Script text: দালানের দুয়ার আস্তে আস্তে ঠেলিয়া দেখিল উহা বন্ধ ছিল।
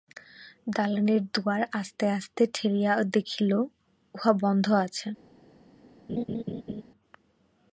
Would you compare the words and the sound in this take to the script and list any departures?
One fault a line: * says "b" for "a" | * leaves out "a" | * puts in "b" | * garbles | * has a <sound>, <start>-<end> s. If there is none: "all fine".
* says "আছে" for "ছিল"
* has a laugh, 6.1-6.8 s